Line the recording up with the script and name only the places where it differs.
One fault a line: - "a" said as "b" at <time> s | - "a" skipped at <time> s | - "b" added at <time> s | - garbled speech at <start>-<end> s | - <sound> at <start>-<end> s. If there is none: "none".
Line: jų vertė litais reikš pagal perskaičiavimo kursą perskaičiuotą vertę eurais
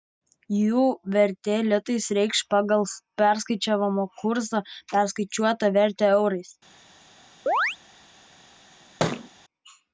- chirp at 7.5-7.8 s
- thud at 9.0-9.3 s